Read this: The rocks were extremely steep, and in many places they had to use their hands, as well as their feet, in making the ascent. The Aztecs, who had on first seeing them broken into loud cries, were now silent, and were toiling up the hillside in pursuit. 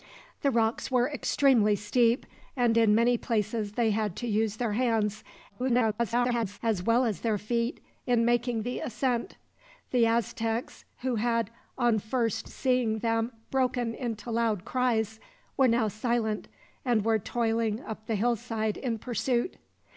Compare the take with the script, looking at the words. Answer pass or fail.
fail